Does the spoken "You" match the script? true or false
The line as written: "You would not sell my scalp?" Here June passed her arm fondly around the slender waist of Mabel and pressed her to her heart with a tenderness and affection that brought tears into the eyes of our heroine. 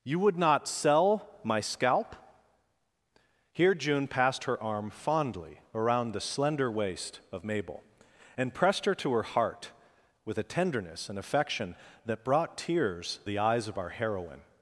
true